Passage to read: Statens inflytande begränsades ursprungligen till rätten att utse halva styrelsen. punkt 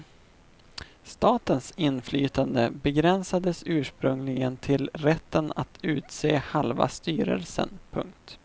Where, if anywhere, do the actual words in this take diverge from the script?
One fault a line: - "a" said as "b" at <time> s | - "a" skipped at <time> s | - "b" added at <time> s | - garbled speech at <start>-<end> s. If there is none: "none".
none